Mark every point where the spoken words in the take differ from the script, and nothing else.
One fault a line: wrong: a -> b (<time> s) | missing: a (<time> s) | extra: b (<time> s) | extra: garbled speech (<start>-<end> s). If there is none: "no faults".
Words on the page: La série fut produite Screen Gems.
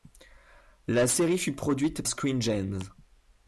no faults